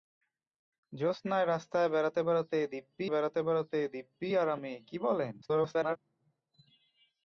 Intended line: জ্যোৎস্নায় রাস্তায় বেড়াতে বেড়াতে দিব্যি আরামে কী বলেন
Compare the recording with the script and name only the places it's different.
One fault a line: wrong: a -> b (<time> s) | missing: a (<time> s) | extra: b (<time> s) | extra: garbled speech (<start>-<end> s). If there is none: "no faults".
extra: বেড়াতে বেড়াতে দিব্যি (3.1 s)
extra: garbled speech (5.4-6.0 s)